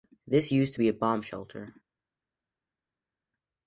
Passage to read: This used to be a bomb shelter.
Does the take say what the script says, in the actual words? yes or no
yes